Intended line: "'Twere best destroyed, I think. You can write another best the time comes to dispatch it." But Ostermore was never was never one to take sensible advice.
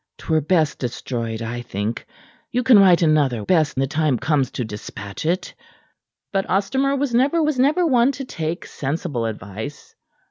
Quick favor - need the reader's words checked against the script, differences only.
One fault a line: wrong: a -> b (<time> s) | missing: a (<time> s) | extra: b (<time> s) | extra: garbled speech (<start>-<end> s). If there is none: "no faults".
no faults